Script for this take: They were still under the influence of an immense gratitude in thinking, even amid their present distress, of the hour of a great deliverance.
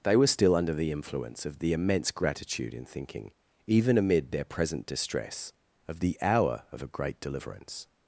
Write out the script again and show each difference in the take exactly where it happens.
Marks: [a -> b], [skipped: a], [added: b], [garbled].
They were still under the influence of [an -> the] immense gratitude in thinking, even amid their present distress, of the hour of a great deliverance.